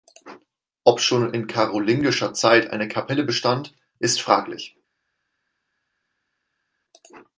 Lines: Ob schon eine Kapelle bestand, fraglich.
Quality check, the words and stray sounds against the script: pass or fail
fail